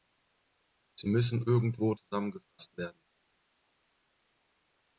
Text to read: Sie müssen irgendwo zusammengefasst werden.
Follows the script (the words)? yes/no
yes